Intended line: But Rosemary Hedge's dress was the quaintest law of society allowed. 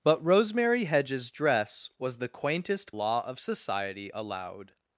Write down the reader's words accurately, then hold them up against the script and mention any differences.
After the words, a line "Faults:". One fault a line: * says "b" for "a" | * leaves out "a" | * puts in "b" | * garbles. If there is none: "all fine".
But Rosemary Hedge's dress was the quaintest law of society allowed.
Faults:
all fine